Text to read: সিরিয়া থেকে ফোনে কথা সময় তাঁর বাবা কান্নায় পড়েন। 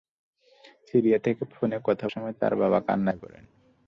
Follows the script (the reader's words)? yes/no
yes